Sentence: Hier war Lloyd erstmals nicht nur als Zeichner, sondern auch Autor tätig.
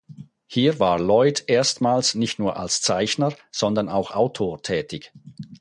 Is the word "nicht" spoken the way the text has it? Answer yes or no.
yes